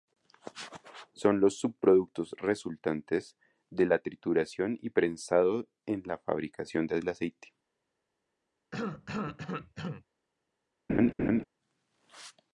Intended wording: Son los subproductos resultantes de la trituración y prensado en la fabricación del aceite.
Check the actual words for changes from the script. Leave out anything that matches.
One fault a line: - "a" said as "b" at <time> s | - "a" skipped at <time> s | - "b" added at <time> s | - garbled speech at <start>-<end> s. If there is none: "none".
none